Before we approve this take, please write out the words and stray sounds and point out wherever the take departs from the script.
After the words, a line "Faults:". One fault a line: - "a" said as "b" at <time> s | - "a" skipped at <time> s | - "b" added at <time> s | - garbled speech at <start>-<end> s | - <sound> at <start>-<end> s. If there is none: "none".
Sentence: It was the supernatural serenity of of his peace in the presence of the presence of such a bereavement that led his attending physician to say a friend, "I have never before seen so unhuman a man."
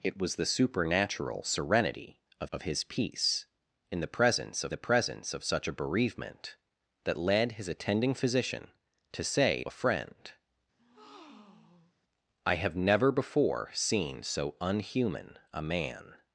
It was the supernatural serenity of of his peace in the presence of the presence of such a bereavement that led his attending physician to say a friend, "I have never before seen so unhuman a man."
Faults:
- breath at 10.8-12.0 s